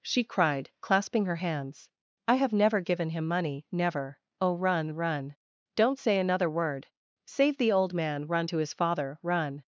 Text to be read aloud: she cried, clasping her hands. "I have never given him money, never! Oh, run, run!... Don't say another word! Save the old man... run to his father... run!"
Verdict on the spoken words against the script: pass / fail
pass